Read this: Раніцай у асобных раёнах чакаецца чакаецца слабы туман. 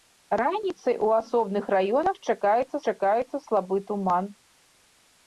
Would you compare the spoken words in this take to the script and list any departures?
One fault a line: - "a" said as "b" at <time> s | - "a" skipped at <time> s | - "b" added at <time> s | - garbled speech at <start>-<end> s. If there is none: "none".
none